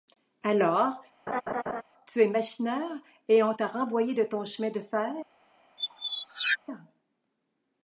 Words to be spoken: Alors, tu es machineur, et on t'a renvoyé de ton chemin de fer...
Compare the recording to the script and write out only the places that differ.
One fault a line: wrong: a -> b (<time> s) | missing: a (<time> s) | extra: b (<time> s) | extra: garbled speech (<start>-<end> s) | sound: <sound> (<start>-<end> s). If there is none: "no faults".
sound: laugh (1.3-1.8 s)
sound: squeak (5.8-6.6 s)